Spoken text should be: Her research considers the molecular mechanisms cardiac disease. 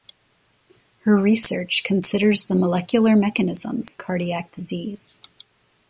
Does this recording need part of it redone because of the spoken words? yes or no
no